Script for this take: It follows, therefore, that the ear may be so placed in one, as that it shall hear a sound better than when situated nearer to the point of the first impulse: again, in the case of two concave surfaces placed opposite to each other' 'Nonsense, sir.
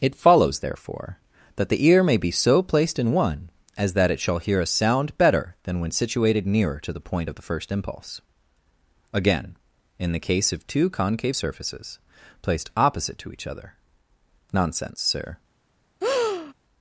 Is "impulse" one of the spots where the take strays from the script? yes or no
no